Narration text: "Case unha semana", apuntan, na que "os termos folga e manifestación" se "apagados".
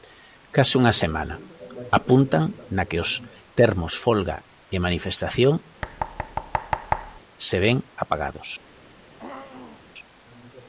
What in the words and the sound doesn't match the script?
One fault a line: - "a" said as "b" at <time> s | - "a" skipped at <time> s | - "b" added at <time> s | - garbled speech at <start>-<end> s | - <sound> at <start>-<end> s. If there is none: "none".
- thud at 5.8-7.2 s
- "ven" added at 7.6 s
- throat clearing at 9.1-9.8 s